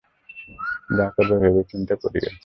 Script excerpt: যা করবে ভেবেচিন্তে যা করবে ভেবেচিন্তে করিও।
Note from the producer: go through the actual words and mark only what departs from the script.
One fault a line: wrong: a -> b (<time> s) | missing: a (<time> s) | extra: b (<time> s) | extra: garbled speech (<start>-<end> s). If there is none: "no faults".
missing: যা করবে ভেবেচিন্তে (1.9 s)